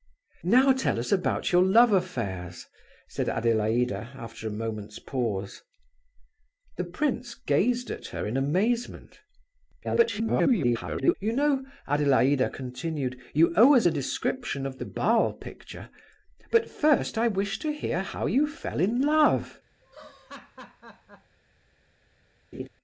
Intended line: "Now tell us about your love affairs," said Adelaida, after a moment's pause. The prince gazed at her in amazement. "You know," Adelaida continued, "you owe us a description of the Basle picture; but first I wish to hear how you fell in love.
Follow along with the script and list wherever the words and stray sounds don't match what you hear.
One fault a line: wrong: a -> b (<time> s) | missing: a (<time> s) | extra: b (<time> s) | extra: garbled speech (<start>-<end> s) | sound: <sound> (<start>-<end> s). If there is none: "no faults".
extra: garbled speech (9.8-11.1 s)
sound: laugh (19.8-21.4 s)
sound: laugh (22.5-22.7 s)